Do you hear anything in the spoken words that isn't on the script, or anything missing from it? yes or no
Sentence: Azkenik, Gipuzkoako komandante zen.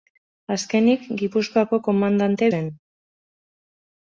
no